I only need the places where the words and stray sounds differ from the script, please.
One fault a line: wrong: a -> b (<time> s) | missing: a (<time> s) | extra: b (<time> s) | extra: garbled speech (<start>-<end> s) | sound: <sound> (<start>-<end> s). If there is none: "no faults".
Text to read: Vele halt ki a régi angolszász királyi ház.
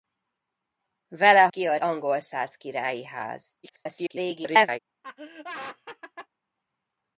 missing: halt (1.5 s)
missing: régi (1.8 s)
extra: garbled speech (3.6-4.8 s)
sound: laugh (5.0-6.3 s)